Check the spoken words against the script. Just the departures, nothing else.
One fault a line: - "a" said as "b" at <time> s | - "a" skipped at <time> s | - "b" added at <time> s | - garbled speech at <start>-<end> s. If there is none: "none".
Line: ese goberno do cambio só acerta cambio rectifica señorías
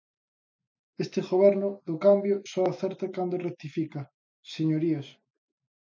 - "ese" said as "este" at 1.0 s
- "cambio" said as "cando" at 3.2 s